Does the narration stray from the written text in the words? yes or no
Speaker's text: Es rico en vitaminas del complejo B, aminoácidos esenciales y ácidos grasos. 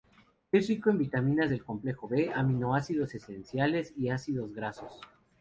no